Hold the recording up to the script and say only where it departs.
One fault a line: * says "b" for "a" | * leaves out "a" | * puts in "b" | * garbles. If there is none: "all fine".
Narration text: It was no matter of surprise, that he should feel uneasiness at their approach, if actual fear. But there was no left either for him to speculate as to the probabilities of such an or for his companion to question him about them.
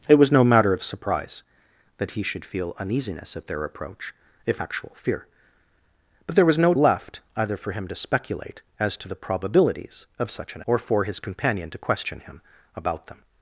all fine